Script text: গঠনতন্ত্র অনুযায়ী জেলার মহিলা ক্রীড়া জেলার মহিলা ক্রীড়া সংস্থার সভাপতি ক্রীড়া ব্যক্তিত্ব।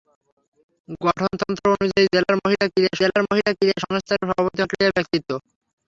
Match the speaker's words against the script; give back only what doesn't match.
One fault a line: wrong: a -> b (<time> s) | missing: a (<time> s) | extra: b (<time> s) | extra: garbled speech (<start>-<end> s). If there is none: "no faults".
no faults